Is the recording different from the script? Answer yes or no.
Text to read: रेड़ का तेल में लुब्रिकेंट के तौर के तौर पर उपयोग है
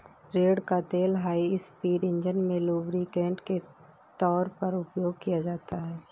yes